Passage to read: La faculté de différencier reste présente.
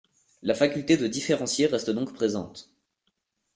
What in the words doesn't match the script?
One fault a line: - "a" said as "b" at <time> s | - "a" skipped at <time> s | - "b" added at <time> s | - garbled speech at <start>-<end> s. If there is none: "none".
- "donc" added at 1.9 s